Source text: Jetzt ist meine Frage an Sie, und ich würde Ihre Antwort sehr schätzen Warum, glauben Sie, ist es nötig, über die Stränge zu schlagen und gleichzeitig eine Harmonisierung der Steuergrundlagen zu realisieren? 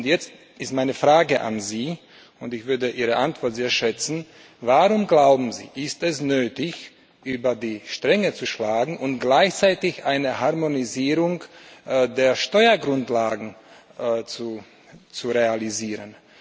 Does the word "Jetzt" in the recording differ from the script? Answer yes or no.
no